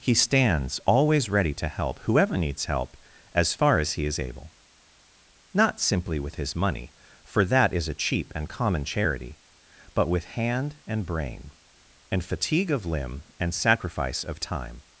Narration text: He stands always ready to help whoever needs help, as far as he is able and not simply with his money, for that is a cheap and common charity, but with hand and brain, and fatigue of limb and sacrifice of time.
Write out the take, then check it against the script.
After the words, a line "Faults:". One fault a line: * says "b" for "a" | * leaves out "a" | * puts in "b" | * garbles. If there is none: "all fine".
He stands always ready to help whoever needs help, as far as he is able not simply with his money, for that is a cheap and common charity, but with hand and brain, and fatigue of limb and sacrifice of time.
Faults:
* leaves out "and"